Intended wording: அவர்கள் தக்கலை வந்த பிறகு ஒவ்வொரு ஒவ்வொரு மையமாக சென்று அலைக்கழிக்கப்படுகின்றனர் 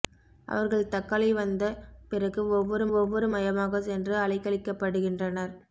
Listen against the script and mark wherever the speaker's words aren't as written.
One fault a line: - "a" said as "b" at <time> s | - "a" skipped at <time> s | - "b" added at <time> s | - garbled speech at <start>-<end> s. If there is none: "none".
none